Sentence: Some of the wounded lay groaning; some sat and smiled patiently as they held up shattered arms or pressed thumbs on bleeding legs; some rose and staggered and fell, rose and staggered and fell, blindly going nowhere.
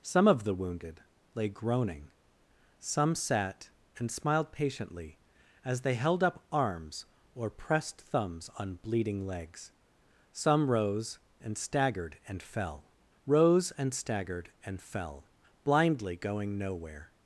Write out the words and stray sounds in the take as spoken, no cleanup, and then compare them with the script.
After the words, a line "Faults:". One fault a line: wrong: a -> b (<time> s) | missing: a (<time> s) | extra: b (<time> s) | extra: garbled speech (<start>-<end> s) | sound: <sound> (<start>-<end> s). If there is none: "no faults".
Some of the wounded lay groaning; some sat and smiled patiently as they held up arms or pressed thumbs on bleeding legs; some rose and staggered and fell, rose and staggered and fell, blindly going nowhere.
Faults:
missing: shattered (6.5 s)